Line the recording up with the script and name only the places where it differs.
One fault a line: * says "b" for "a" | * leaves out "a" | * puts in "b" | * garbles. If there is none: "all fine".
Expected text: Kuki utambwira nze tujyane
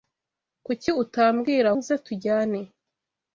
all fine